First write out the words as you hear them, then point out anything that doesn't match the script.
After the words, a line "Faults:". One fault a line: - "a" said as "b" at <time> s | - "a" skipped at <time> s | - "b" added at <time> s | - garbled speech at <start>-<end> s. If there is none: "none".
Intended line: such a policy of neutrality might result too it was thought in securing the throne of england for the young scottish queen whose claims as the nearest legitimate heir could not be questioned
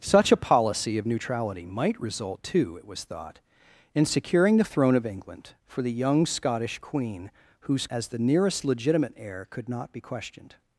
such a policy of neutrality might result too it was thought in securing the throne of england for the young scottish queen whose as the nearest legitimate heir could not be questioned
Faults:
- "claims" skipped at 7.8 s